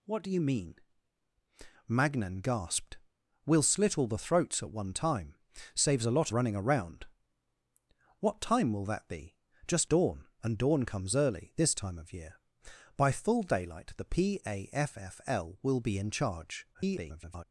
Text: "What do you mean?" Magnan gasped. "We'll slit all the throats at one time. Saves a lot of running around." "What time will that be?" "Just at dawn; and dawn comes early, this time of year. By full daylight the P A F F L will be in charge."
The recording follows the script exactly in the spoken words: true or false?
false